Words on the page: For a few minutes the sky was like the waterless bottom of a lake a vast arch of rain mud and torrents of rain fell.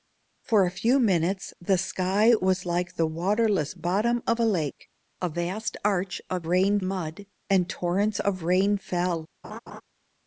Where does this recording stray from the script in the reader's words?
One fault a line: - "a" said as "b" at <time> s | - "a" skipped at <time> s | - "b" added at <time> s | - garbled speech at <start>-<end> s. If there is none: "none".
none